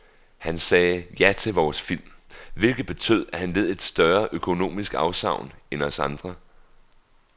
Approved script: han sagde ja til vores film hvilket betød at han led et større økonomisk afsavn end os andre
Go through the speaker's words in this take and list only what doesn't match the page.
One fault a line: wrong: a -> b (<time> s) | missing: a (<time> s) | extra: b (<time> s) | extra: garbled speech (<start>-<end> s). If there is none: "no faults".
no faults